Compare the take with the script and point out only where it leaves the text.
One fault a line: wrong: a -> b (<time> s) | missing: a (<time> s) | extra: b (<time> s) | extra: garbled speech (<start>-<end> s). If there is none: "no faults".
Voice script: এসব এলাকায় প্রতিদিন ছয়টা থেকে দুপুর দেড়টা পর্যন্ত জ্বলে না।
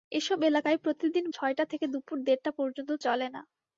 no faults